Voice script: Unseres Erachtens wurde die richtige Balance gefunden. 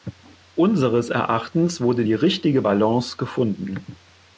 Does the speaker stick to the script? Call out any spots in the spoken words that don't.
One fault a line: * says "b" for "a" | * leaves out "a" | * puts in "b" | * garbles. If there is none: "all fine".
all fine